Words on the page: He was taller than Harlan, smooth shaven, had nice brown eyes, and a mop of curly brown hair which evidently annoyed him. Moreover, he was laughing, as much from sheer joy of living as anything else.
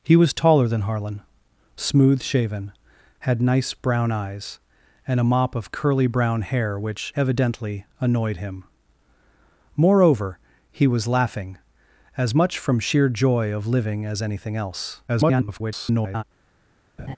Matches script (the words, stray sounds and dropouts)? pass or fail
fail